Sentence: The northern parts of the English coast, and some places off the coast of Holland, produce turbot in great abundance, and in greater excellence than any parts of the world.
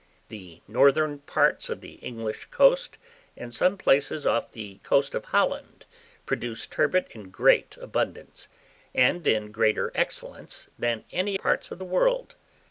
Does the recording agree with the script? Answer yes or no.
yes